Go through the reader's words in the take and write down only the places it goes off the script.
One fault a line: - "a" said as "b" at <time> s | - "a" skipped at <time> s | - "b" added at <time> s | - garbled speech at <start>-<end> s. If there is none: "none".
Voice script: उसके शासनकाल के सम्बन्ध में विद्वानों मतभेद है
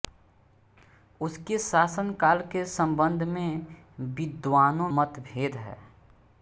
none